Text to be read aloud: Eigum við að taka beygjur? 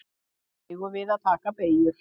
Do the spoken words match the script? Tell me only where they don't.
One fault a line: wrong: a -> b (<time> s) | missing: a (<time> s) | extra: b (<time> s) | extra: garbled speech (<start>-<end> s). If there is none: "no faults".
no faults